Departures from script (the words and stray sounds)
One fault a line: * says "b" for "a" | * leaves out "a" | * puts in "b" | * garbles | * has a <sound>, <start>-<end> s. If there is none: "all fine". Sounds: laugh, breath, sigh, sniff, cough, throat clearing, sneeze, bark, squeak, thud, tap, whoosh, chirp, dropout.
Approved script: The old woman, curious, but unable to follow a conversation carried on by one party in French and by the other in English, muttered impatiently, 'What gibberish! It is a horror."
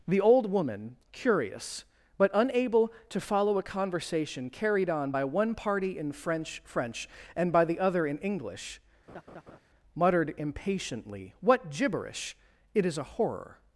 * puts in "French"
* has a laugh, 9.1-9.6 s